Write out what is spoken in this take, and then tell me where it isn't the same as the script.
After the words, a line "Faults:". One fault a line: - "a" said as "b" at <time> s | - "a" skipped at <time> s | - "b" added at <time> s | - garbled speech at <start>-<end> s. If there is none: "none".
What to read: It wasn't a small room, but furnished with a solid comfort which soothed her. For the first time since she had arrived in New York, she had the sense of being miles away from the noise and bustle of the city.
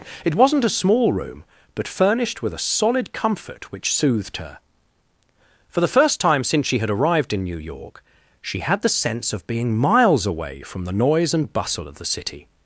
It wasn't a small room, but furnished with a solid comfort which soothed her. For the first time since she had arrived in New York, she had the sense of being miles away from the noise and bustle of the city.
Faults:
none